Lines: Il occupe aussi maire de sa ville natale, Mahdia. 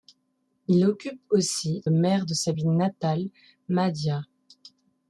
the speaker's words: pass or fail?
pass